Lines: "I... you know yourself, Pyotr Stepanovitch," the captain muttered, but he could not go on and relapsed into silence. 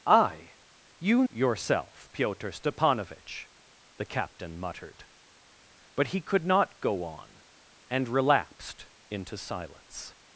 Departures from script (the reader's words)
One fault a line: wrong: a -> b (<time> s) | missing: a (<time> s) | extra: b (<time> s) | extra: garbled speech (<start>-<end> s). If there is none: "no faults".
missing: know (1.2 s)